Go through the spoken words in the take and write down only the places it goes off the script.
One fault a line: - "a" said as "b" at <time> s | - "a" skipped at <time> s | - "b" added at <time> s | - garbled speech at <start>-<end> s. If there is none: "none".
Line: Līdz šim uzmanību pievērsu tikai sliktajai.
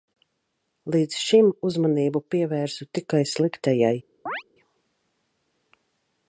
none